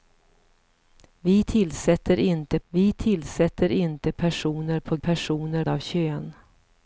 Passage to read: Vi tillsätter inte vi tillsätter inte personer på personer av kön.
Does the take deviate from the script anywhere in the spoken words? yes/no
no